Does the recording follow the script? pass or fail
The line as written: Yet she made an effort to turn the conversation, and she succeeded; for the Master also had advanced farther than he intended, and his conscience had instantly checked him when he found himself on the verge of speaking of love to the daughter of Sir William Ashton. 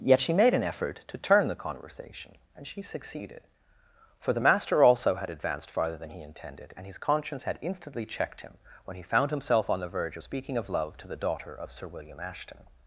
pass